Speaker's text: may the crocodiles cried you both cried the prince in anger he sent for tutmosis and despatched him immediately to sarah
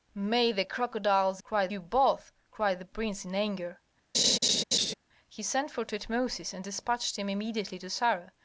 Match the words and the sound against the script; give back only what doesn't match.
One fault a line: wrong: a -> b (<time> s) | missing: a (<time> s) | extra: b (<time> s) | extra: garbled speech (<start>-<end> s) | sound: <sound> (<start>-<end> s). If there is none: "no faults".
sound: laugh (4.1-4.9 s)